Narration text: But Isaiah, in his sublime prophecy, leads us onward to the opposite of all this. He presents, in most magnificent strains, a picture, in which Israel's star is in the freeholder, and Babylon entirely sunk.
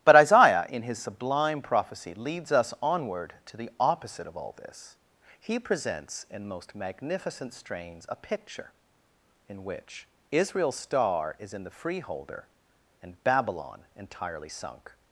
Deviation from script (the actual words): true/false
false